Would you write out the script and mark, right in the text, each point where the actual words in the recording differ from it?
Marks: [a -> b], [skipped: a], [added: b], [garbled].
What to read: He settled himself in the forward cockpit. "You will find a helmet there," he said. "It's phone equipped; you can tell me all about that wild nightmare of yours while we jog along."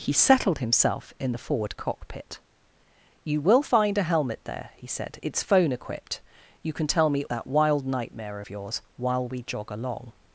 He settled himself in the forward cockpit. "You will find a helmet there," he said. "It's phone equipped; you can tell me [skipped: all about] that wild nightmare of yours while we jog along."